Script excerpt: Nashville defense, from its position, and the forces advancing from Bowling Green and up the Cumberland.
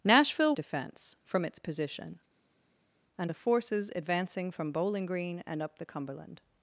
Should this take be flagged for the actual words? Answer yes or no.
no